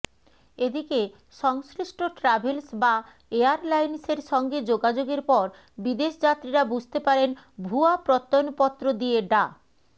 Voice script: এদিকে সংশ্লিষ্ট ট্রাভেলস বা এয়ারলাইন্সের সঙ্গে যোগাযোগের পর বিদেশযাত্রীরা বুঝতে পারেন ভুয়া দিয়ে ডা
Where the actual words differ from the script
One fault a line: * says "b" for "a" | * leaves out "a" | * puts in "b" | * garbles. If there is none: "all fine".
* puts in "প্রত্যয়নপত্র"